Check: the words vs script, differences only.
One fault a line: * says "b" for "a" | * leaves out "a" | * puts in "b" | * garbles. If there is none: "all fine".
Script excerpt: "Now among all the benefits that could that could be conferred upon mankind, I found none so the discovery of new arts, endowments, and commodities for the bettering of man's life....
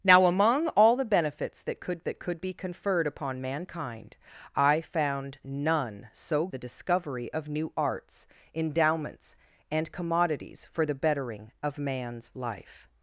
all fine